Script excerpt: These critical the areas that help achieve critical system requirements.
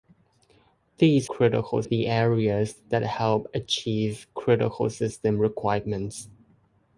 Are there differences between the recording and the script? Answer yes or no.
no